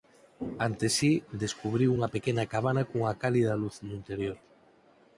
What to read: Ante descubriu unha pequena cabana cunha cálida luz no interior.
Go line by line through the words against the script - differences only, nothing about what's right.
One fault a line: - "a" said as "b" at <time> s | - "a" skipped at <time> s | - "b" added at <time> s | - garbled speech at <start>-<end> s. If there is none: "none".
- "si" added at 1.0 s